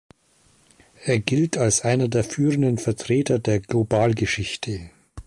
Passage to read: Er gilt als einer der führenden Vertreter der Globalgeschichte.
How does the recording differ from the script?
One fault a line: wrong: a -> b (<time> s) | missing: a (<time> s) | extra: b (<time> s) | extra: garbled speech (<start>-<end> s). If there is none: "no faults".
no faults